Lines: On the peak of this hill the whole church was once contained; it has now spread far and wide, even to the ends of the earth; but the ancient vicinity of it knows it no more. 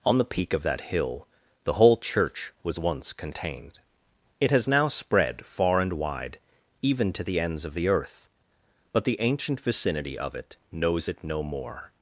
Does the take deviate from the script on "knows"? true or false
false